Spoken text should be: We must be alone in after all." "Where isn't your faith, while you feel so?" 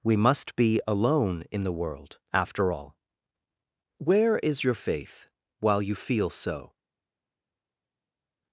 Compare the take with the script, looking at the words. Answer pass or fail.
fail